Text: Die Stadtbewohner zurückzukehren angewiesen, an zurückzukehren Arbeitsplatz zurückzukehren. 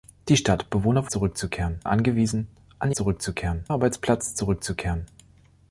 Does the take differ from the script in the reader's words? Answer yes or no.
no